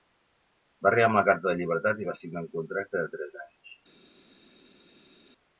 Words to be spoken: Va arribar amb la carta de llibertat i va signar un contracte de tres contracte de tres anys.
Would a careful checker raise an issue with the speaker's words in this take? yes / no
yes